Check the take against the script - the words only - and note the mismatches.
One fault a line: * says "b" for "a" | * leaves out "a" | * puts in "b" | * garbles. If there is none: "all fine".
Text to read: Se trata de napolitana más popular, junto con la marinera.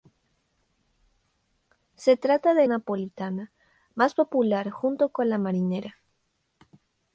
all fine